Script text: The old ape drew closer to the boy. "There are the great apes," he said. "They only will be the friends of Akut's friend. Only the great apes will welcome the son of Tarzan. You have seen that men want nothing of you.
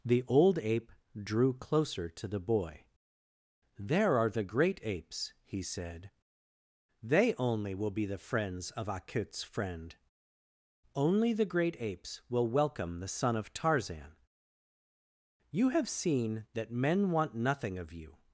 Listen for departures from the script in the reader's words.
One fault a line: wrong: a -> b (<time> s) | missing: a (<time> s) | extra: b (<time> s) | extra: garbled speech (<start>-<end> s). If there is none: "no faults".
no faults